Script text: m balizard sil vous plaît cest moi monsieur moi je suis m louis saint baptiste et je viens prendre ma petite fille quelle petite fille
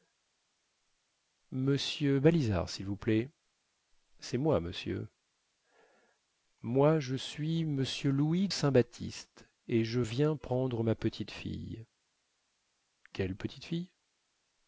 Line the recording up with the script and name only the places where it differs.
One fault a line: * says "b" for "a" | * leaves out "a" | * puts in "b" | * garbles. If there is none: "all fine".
all fine